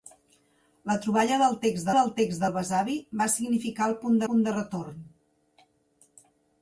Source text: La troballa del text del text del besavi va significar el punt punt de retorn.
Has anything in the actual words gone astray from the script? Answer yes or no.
no